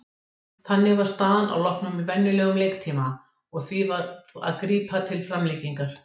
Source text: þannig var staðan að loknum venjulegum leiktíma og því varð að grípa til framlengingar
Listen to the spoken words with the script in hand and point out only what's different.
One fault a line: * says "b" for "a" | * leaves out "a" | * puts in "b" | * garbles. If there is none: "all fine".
all fine